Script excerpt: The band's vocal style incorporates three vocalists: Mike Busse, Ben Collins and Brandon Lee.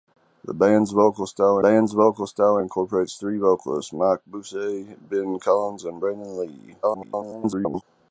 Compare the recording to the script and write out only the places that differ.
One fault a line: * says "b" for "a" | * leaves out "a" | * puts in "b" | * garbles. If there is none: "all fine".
* puts in "band's vocal style"
* garbles